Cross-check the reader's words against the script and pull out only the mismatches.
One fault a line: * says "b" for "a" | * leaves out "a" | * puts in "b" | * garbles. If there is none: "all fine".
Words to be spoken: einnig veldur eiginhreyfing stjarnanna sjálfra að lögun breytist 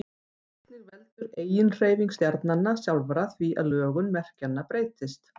* puts in "því"
* puts in "merkjanna"